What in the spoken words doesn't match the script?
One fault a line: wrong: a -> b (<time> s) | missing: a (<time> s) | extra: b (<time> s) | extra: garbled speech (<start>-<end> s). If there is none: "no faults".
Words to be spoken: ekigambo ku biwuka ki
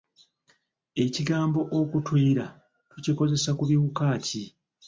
extra: okutuyira tukikozesa (1.8 s)